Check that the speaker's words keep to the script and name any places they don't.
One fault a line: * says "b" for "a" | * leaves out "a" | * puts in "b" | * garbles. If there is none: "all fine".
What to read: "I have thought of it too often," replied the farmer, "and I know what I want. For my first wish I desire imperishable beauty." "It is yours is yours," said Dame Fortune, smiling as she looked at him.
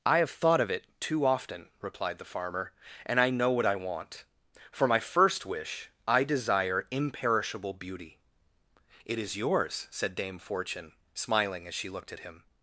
* leaves out "is yours"